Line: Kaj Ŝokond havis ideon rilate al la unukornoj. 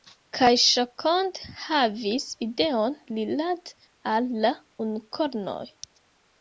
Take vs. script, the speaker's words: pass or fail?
pass